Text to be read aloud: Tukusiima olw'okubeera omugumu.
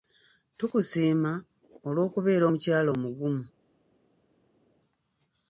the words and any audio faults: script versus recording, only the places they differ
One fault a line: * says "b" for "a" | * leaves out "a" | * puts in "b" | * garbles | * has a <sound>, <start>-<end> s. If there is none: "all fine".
* puts in "omukyala"